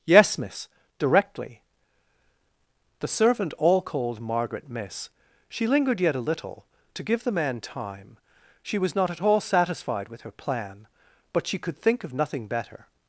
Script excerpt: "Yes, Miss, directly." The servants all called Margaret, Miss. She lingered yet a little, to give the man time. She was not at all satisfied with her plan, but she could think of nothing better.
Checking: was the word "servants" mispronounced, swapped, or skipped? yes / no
yes